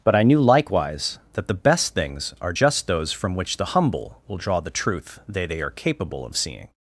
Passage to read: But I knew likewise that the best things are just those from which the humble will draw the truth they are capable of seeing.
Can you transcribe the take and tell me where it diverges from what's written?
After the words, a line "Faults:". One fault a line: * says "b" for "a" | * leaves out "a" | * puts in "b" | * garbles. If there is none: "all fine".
But I knew likewise that the best things are just those from which the humble will draw the truth they they are capable of seeing.
Faults:
* puts in "they"